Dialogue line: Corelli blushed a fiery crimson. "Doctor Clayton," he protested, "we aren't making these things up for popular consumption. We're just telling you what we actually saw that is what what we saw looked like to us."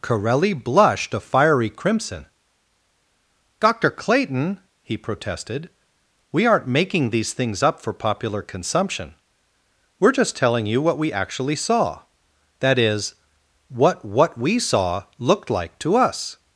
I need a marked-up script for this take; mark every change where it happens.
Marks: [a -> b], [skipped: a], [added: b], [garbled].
Corelli blushed a fiery crimson. "Doctor Clayton," he protested, "we aren't making these things up for popular consumption. We're just telling you what we actually saw that is what what we saw looked like to us."